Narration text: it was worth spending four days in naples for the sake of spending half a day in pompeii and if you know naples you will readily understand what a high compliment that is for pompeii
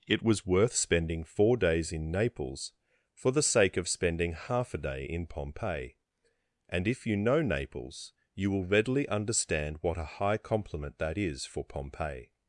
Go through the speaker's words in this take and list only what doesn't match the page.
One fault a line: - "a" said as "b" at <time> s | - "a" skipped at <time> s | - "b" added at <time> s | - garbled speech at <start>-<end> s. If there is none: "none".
none